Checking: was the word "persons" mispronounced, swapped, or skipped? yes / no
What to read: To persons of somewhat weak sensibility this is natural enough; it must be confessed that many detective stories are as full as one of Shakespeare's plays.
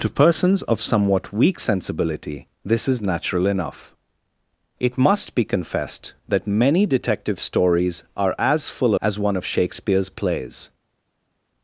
no